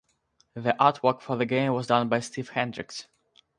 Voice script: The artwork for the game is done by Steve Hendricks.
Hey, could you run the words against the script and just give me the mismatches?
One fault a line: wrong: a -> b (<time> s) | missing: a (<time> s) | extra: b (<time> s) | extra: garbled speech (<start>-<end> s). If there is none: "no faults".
wrong: is -> was (1.7 s)